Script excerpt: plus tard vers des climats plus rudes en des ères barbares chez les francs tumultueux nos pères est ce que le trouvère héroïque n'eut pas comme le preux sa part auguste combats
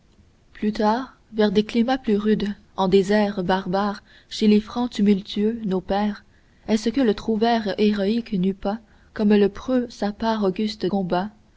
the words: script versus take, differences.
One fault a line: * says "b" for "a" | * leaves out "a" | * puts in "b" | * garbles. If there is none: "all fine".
all fine